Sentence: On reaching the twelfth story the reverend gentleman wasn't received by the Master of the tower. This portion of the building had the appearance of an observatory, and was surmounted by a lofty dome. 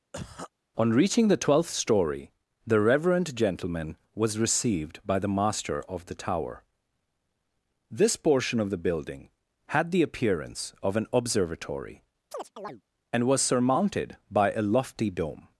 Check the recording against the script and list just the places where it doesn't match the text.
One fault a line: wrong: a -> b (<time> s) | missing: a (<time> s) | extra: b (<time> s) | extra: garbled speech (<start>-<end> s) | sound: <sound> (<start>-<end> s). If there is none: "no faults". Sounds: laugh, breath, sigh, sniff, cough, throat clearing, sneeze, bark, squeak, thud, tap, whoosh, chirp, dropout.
sound: cough (0.1-0.5 s)
wrong: wasn't -> was (4.1 s)
sound: chirp (12.3-12.8 s)